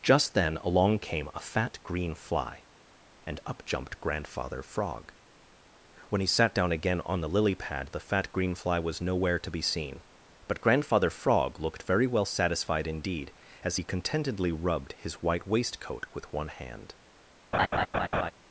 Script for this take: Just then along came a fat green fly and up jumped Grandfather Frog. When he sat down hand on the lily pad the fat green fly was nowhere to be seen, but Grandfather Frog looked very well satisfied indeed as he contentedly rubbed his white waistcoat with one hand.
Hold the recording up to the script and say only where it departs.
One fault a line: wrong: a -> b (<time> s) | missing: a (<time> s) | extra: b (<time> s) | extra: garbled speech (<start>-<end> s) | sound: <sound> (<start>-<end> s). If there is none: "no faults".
wrong: hand -> again (6.7 s)
sound: laugh (17.5-18.3 s)